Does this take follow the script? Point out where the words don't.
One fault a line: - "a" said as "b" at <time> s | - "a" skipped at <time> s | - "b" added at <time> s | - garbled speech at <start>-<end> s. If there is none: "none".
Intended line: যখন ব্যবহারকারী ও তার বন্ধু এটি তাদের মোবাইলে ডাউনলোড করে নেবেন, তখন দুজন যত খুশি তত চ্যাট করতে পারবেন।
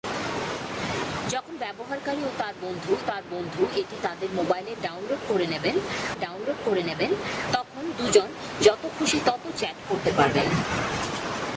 - "তার বন্ধু" added at 3.1 s
- "ডাউনলোড করে নেবেন" added at 6.2 s